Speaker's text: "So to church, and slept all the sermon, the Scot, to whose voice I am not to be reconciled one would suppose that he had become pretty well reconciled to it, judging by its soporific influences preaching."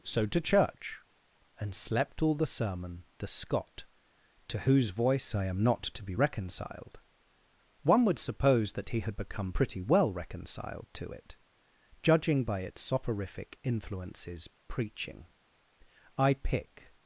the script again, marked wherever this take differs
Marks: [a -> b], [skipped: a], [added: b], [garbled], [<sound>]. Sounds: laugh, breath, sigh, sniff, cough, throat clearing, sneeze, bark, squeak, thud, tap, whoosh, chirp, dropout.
"So to church, and slept all the sermon, the Scot, to whose voice I am not to be reconciled one would suppose that he had become pretty well reconciled to it, judging by its soporific influences preaching." [added: I pick]